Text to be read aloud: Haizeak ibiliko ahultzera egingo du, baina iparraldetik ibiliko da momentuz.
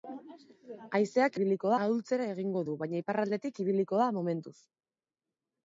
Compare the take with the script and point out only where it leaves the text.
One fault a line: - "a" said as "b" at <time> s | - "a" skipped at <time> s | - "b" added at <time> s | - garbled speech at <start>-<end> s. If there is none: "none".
none